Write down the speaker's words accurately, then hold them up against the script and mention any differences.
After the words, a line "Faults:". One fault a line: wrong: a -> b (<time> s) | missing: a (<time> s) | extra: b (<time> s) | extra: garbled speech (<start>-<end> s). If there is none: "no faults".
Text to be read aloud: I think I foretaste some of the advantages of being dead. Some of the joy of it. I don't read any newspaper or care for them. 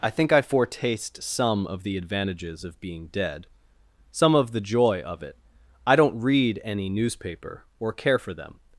I think I foretaste some of the advantages of being dead. Some of the joy of it. I don't read any newspaper or care for them.
Faults:
no faults